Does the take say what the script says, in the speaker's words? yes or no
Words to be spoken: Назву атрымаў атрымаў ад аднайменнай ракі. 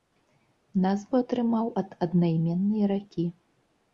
no